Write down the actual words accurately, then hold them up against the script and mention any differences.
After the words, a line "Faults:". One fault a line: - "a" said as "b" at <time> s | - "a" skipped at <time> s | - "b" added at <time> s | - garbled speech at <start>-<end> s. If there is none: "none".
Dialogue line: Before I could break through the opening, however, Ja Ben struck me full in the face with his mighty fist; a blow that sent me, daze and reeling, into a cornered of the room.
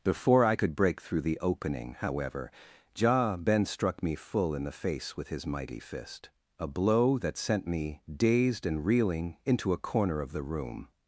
Before I could break through the opening, however, Ja Ben struck me full in the face with his mighty fist; a blow that sent me, dazed and reeling, into a corner of the room.
Faults:
- "daze" said as "dazed" at 8.1 s
- "cornered" said as "corner" at 9.8 s